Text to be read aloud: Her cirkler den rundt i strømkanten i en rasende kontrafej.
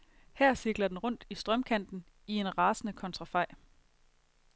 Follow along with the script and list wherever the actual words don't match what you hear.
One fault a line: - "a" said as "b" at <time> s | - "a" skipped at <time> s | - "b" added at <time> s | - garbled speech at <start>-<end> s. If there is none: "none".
none